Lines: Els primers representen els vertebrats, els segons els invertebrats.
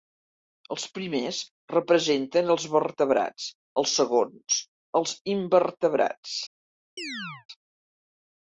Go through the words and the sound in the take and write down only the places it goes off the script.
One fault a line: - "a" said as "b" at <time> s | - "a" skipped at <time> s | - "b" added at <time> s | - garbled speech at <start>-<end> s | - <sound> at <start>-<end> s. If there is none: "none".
- chirp at 7.0-7.5 s